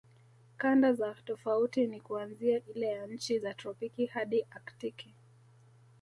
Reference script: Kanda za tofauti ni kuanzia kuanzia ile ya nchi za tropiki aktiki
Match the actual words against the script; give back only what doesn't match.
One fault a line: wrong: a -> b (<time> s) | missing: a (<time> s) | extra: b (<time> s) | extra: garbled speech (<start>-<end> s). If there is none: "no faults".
missing: kuanzia (2.6 s)
extra: hadi (4.1 s)